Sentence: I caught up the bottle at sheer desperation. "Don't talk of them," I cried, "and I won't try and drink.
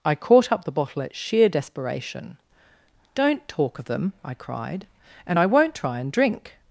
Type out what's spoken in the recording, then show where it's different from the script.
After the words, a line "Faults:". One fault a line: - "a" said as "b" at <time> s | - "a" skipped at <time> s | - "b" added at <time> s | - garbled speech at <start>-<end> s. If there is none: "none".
I caught up the bottle at sheer desperation. "Don't talk of them," I cried, "and I won't try and drink.
Faults:
none